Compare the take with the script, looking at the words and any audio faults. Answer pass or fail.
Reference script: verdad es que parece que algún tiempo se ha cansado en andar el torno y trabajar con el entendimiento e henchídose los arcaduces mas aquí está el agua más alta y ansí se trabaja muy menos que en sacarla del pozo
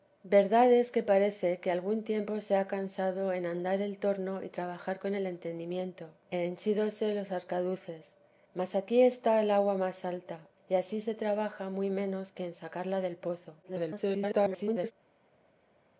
fail